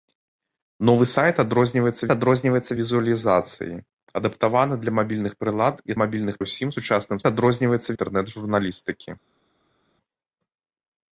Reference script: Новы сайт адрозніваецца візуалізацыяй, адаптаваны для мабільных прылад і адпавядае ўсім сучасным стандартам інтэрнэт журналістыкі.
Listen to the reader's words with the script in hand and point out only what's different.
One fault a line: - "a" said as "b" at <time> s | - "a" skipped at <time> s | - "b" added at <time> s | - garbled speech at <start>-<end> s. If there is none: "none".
- "адрозніваецца" added at 2.1 s
- "адпавядае" said as "мабільных" at 6.0 s
- "стандартам" said as "адрозніваецца" at 7.3 s